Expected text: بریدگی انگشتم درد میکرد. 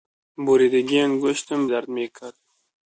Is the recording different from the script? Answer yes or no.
no